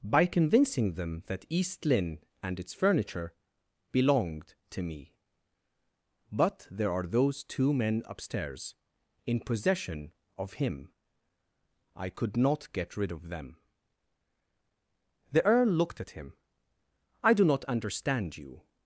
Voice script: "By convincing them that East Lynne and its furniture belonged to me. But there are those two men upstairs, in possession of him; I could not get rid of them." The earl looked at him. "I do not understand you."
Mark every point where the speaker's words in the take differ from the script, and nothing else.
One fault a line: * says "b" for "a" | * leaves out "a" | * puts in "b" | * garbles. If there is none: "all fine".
all fine